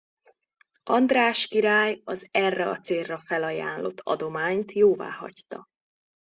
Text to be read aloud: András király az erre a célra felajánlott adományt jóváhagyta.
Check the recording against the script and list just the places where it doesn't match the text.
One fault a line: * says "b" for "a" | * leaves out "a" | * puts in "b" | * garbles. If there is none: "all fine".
all fine